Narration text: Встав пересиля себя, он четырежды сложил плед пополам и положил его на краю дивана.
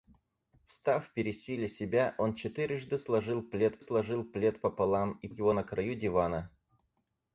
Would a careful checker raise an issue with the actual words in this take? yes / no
yes